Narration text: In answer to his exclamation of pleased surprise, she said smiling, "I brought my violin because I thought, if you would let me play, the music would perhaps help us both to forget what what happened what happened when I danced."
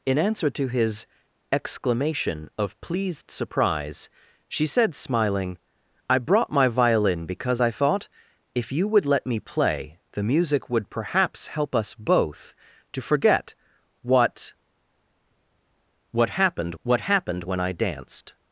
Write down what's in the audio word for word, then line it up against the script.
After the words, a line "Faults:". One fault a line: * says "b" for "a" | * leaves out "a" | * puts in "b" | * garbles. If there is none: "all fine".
In answer to his exclamation of pleased surprise, she said smiling, "I brought my violin because I thought, if you would let me play, the music would perhaps help us both to forget what what happened what happened when I danced."
Faults:
all fine